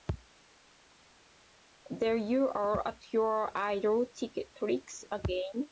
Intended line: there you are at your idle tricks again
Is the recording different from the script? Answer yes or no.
no